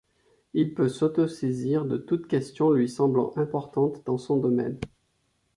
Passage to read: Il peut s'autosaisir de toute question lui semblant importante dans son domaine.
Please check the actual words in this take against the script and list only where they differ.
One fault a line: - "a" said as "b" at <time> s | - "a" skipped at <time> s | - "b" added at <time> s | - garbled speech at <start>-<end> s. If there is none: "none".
none